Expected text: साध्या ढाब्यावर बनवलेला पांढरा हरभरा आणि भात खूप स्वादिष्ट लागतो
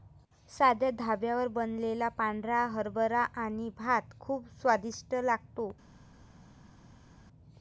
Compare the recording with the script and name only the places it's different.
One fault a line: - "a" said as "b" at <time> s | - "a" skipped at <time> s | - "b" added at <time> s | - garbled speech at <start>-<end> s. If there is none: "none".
none